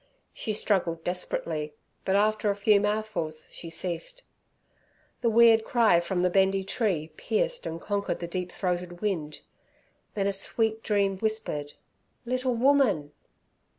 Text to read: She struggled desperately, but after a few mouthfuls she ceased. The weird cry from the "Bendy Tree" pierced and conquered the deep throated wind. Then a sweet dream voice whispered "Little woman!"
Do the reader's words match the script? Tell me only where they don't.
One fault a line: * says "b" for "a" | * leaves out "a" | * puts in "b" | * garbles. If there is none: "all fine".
* leaves out "voice"